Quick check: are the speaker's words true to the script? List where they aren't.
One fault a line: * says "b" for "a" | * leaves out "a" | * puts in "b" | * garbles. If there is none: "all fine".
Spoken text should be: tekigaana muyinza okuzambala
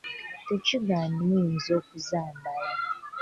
all fine